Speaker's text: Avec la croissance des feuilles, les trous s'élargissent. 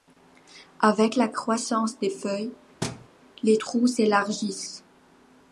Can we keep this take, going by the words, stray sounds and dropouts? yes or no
no